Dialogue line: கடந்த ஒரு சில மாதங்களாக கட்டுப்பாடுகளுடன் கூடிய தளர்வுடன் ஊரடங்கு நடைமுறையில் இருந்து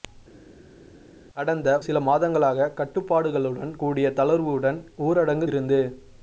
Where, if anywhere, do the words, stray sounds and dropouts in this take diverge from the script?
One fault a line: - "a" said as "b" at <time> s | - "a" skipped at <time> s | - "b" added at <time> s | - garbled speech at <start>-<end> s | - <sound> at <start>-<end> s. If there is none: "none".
- "ஒரு" skipped at 1.7 s
- "நடைமுறையில்" skipped at 5.5 s